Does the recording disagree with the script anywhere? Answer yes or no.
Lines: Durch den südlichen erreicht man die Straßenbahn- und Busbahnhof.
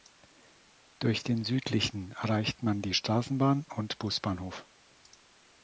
no